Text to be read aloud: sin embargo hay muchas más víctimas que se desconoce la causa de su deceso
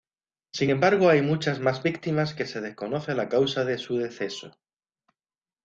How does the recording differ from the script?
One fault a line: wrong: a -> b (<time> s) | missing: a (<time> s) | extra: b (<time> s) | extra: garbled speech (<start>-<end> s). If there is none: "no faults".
no faults